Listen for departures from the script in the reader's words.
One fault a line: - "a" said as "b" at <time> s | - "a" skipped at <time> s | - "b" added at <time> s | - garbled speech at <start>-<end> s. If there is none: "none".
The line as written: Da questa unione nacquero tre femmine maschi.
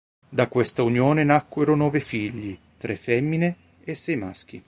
- "nove figli" added at 1.8 s
- "e sei" added at 3.8 s